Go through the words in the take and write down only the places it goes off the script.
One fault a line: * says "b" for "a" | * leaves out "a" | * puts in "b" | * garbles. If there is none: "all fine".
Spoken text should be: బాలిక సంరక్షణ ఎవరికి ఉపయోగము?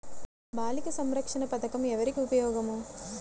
* puts in "పథకం"